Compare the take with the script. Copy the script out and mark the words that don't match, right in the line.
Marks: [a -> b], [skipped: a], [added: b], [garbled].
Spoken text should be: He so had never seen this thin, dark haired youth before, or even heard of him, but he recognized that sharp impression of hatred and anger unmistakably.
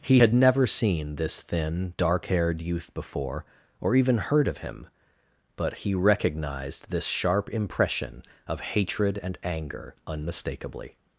He [skipped: so] had never seen this thin, dark haired youth before, or even heard of him, but he recognized [that -> this] sharp impression of hatred and anger unmistakably.